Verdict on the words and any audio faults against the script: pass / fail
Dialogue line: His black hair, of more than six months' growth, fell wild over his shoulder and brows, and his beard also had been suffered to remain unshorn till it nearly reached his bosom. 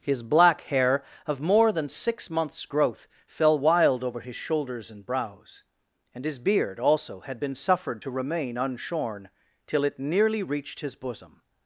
fail